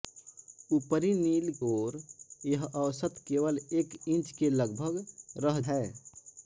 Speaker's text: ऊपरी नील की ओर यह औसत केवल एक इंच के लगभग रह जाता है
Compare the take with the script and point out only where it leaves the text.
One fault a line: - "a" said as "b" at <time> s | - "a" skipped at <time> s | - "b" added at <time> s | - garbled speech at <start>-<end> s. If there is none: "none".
- "की" skipped at 1.5 s
- "जाता" skipped at 5.6 s